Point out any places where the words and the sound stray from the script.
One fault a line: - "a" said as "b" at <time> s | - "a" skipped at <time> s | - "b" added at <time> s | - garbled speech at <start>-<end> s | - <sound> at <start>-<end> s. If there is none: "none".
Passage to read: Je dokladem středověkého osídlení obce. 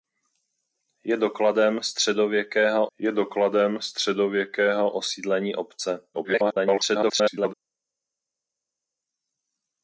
- "je dokladem středověkého" added at 3.0 s
- garbled speech at 6.1-7.5 s